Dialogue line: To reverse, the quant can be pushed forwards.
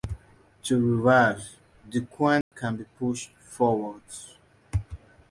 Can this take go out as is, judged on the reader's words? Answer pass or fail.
pass